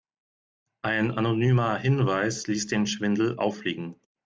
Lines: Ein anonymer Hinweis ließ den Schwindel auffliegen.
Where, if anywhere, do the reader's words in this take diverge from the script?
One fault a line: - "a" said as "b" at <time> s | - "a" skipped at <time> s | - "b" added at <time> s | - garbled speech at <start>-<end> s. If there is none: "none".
none